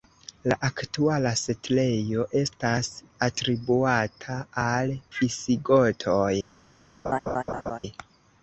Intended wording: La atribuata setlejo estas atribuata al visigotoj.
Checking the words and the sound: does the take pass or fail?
fail